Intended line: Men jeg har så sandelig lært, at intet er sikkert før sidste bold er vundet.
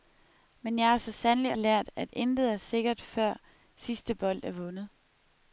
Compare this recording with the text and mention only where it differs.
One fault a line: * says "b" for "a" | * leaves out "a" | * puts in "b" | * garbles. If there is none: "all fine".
all fine